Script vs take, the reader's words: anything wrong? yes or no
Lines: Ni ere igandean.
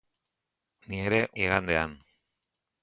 no